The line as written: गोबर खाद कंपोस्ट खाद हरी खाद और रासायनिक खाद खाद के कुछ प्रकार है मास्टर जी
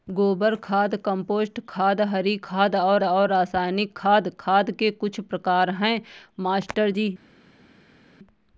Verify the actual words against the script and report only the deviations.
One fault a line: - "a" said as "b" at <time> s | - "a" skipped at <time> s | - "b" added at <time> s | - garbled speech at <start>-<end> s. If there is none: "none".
- "और" added at 3.0 s